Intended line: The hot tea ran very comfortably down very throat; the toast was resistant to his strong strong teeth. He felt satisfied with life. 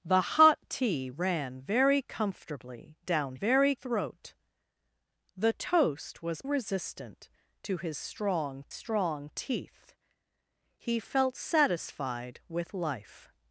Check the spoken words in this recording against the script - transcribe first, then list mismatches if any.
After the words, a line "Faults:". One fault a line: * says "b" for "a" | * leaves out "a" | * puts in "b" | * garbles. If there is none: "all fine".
The hot tea ran very comfortably down very throat; the toast was resistant to his strong strong teeth. He felt satisfied with life.
Faults:
all fine